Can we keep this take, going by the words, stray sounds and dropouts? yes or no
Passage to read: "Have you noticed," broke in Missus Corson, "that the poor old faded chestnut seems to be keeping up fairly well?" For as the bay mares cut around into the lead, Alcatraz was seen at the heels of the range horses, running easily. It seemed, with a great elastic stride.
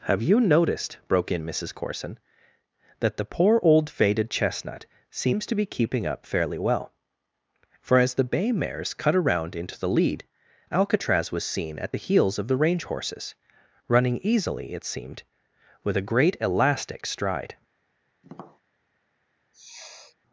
no